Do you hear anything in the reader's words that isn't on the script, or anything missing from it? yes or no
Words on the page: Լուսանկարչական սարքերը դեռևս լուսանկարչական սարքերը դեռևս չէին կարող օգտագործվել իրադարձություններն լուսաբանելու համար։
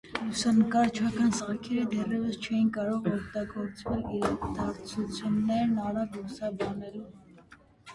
yes